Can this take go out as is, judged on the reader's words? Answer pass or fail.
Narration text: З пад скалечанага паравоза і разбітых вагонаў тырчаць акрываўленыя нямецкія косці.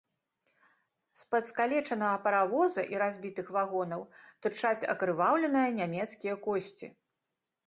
pass